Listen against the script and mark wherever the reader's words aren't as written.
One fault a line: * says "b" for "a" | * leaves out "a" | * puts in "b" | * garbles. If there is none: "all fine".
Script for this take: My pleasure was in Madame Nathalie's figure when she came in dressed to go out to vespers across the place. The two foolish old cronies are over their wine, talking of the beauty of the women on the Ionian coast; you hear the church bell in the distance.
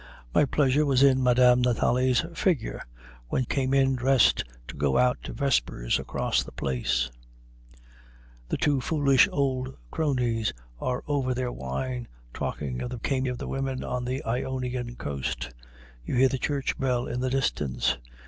* leaves out "she"
* says "came" for "beauty"